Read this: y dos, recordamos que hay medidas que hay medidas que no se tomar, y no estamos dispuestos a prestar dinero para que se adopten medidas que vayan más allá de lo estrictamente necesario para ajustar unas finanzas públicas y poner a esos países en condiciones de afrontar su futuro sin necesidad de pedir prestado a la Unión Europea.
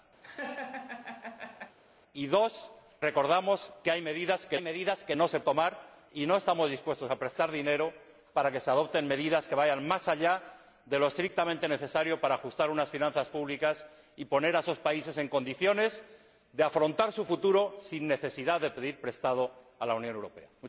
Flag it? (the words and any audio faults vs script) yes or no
yes